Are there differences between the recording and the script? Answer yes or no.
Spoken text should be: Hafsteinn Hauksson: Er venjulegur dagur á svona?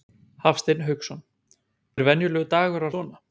no